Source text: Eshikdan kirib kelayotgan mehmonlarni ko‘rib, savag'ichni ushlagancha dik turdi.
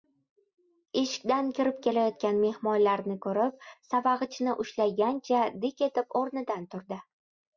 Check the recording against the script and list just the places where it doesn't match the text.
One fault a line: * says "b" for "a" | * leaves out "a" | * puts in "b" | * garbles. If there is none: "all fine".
* puts in "etib o‘rnidan"